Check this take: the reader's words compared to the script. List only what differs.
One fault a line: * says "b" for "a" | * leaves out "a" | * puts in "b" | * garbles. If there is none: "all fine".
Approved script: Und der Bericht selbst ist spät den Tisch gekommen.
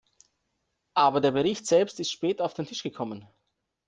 * says "Aber" for "Und"
* puts in "auf"